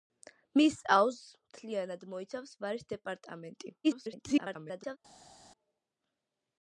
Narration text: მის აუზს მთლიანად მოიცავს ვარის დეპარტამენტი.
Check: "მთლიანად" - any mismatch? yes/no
no